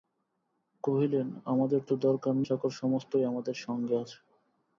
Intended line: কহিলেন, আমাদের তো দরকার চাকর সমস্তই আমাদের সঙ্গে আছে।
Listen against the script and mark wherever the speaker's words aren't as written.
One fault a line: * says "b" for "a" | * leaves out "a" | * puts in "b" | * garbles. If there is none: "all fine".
all fine